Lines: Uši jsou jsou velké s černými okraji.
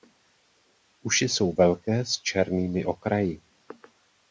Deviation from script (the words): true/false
true